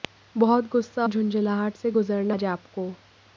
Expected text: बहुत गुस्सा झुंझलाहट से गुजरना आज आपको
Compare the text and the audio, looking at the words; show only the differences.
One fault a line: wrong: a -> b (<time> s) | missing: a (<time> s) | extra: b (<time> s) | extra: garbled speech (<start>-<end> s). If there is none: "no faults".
no faults